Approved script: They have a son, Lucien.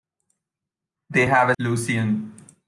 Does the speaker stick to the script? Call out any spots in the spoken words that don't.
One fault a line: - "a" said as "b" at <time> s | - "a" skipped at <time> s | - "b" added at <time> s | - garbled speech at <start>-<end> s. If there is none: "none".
- "son" skipped at 1.5 s